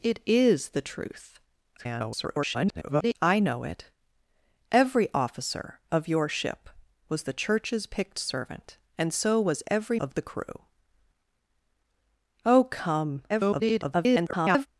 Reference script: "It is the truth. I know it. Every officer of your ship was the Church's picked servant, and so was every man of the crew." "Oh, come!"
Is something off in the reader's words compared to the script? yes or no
yes